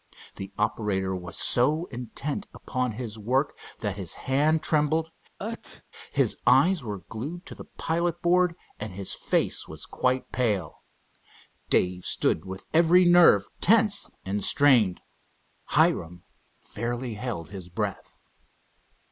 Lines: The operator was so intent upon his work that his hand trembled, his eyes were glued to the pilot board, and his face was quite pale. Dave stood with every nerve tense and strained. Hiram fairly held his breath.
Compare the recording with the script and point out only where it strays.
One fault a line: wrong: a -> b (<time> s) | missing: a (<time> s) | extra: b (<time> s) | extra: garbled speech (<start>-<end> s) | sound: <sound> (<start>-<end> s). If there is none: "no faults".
sound: sneeze (5.4-5.8 s)